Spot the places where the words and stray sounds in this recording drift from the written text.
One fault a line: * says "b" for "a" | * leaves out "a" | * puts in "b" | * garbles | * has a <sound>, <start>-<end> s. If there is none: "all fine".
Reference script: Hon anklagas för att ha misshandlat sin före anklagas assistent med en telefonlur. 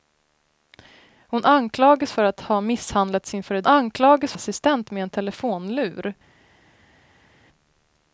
all fine